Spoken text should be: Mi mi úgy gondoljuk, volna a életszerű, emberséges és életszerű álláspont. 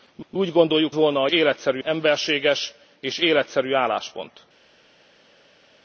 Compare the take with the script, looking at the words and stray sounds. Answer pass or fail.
pass